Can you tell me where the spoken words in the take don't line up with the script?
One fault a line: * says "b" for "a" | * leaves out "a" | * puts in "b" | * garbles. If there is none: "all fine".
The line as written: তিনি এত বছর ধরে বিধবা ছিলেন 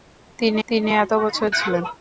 * puts in "তিনি"
* leaves out "ধরে বিধবা"